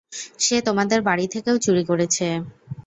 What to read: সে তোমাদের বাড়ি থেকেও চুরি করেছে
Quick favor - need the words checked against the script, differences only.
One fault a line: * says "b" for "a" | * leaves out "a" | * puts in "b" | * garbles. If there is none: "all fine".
all fine